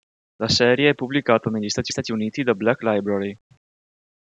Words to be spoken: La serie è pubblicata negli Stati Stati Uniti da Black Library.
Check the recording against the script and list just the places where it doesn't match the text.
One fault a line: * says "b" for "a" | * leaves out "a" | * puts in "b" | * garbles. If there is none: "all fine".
all fine